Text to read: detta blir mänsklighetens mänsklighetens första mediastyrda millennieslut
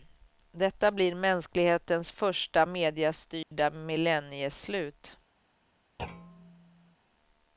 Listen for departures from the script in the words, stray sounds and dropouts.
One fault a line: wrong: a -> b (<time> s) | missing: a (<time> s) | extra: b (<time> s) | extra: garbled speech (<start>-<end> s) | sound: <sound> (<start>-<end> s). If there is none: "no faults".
missing: mänsklighetens (2.1 s)
sound: dropout (3.4-3.5 s)
sound: thud (6.0-7.0 s)